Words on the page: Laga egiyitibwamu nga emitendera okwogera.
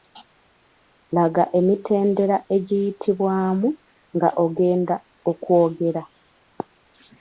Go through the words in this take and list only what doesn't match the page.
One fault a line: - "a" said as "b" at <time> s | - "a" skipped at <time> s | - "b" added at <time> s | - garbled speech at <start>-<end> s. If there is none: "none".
- "emitendera" added at 1.6 s
- "emitendera" said as "ogenda" at 4.4 s